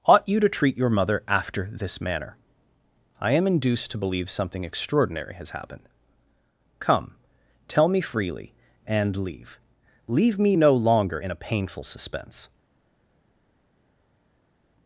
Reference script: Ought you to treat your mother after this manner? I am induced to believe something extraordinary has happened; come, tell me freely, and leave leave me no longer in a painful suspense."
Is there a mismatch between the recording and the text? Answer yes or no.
no